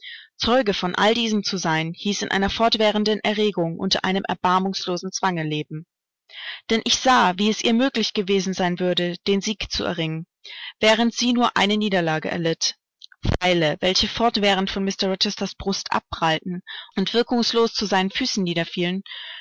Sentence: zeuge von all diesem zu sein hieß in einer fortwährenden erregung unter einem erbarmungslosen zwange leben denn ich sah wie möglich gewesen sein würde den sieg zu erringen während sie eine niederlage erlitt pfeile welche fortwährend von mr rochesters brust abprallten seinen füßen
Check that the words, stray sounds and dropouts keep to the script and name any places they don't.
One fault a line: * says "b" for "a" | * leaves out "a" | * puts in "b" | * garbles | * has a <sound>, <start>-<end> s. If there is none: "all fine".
* puts in "es ihr"
* puts in "nur"
* puts in "und wirkungslos zu"